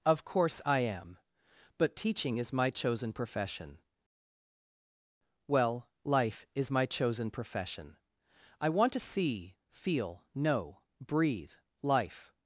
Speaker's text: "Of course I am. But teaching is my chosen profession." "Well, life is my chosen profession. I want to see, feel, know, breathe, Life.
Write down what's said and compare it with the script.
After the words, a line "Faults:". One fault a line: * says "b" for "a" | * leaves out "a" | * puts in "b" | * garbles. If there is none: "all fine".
"Of course I am. But teaching is my chosen profession." "Well, life is my chosen profession. I want to see, feel, know, breathe, Life.
Faults:
all fine